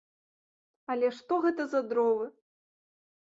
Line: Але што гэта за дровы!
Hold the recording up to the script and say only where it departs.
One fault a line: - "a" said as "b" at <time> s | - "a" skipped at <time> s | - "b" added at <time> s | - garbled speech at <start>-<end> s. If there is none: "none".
none